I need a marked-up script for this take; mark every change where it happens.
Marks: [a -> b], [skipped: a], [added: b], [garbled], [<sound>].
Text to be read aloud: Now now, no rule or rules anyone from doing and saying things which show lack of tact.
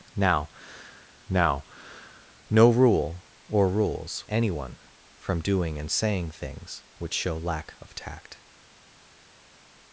Now now, no rule or rules anyone from doing and saying things which show lack of tact.